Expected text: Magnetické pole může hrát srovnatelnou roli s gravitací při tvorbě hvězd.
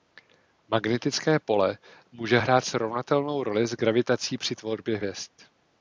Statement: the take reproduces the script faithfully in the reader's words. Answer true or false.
true